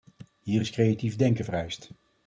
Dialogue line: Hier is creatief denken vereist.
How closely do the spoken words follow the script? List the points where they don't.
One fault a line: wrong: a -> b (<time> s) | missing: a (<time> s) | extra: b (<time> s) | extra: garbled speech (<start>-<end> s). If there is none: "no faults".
no faults